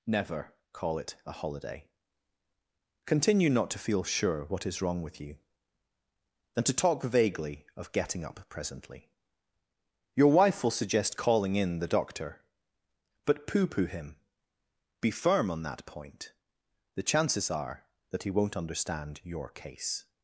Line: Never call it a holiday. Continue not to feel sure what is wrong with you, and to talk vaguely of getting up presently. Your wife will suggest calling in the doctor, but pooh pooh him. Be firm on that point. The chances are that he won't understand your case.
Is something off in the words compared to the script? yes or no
yes